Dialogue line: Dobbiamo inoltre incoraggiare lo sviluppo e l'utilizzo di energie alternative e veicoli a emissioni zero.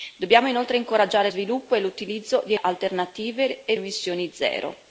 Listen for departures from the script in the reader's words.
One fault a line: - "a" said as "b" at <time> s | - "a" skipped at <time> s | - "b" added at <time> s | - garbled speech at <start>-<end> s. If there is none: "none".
- "lo" skipped at 1.3 s
- "energie" skipped at 2.5 s
- "veicoli" skipped at 3.8 s